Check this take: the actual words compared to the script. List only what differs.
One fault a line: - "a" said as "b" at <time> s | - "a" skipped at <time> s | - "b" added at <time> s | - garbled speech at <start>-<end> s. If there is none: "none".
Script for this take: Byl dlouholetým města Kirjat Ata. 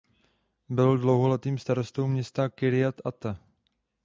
- "starostou" added at 1.6 s